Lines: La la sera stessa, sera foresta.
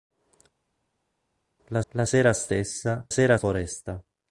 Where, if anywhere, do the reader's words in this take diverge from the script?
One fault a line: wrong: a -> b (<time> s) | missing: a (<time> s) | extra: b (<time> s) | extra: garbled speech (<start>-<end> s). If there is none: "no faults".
no faults